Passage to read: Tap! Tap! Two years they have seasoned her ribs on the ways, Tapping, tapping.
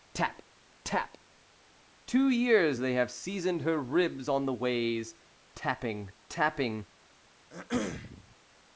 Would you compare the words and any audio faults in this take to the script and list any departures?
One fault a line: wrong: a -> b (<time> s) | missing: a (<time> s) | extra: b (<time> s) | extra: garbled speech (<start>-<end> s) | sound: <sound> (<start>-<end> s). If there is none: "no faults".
sound: throat clearing (7.5-8.4 s)